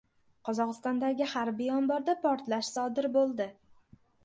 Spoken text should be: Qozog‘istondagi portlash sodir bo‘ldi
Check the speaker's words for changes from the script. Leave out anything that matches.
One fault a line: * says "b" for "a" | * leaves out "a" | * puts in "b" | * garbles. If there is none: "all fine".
* puts in "harbiy omborda"